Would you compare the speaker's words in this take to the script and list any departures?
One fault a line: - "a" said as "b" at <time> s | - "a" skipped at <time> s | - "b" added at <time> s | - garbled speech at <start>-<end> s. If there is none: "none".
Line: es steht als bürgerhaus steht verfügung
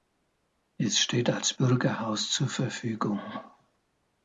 - "steht" said as "zur" at 2.3 s